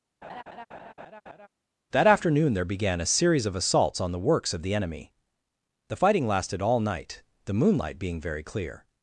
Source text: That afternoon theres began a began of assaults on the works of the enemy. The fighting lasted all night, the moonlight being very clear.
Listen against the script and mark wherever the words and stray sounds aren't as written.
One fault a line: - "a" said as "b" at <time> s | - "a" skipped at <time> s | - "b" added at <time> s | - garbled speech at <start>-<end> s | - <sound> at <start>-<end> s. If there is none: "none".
- laugh at 0.2-1.5 s
- "theres" said as "there" at 2.5 s
- "began" said as "series" at 3.1 s